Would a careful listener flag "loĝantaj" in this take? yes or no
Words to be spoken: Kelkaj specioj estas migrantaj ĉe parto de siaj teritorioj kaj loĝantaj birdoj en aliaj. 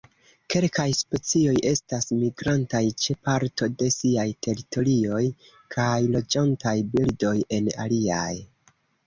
no